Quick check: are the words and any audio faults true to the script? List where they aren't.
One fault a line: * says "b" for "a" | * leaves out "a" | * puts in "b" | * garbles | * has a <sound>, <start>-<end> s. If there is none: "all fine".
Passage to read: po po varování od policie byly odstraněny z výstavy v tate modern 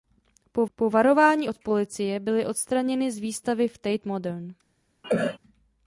* has a cough, 5.0-5.4 s